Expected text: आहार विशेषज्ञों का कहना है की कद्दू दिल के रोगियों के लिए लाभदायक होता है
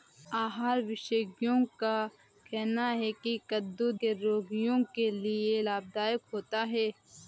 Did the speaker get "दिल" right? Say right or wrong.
wrong